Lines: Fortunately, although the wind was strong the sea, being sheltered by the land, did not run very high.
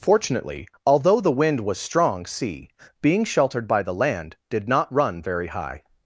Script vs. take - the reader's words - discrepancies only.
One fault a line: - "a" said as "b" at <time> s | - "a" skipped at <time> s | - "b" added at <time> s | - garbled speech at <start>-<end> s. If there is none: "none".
- "the" skipped at 2.2 s